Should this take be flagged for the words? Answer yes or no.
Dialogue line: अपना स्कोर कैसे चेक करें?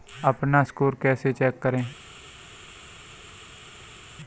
no